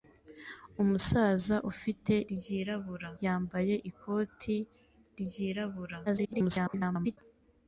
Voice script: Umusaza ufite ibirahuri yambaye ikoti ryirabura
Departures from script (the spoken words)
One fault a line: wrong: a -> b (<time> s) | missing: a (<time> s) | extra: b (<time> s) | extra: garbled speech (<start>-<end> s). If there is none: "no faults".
wrong: ibirahuri -> ryirabura (2.3 s)
extra: garbled speech (6.1-7.2 s)